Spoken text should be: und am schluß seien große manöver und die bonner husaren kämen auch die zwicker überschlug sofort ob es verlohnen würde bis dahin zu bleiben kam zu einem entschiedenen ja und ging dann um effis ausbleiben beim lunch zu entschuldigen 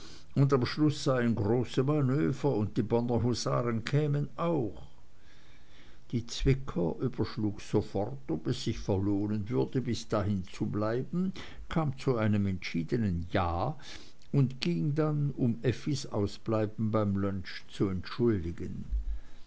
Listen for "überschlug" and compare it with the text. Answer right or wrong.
right